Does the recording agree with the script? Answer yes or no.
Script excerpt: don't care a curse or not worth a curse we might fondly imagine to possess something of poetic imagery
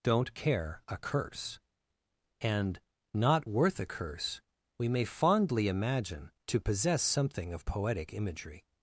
no